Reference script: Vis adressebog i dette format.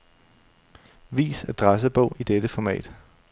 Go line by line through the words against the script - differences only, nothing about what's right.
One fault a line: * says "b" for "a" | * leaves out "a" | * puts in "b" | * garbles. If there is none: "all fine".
all fine